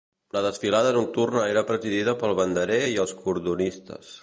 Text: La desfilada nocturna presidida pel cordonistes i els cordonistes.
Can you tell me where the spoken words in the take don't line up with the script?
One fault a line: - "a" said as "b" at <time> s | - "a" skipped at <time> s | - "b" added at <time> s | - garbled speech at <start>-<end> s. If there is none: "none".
- "era" added at 1.5 s
- "cordonistes" said as "banderer" at 2.4 s